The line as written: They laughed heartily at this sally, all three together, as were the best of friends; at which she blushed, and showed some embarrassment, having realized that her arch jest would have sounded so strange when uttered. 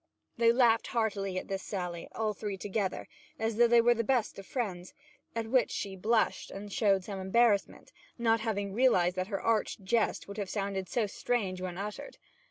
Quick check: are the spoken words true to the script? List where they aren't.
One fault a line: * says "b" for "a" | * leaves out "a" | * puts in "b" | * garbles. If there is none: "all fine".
* puts in "though they"
* puts in "not"